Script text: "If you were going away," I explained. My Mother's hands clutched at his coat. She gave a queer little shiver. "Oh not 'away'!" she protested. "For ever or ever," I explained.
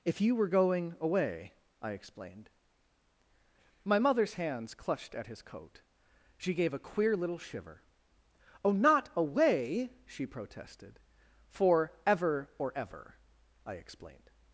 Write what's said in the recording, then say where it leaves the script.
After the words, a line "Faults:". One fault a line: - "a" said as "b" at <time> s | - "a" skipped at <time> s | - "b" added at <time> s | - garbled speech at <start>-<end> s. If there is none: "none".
"If you were going away," I explained. My Mother's hands clutched at his coat. She gave a queer little shiver. "Oh not 'away'!" she protested. "For ever or ever," I explained.
Faults:
none